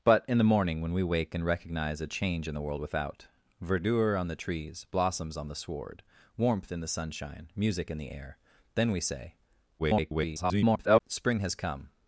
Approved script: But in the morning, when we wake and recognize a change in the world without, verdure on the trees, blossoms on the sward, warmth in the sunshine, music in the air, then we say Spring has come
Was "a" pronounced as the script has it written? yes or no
yes